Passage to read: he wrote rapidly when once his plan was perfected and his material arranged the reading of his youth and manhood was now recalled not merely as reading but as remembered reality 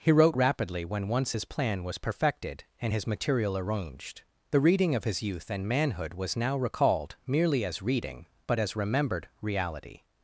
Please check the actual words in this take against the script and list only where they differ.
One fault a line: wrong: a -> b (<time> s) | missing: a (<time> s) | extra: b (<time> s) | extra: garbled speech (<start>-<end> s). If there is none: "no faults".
missing: not (7.1 s)